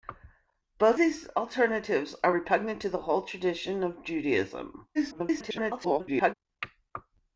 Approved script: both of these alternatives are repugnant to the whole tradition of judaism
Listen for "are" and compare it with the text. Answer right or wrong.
right